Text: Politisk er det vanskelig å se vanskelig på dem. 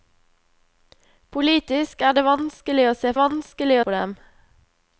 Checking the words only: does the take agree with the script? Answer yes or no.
yes